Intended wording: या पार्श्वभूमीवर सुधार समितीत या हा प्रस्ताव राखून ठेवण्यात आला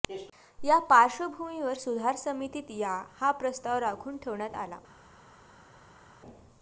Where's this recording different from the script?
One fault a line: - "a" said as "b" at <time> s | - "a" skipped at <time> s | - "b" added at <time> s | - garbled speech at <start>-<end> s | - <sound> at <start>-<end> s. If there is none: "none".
none